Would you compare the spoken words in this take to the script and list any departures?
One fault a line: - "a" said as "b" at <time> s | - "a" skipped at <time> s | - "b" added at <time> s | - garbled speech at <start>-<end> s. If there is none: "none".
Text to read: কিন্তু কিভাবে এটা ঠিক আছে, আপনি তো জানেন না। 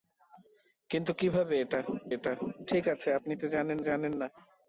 - "এটা" added at 2.1 s
- "জানেন" added at 3.8 s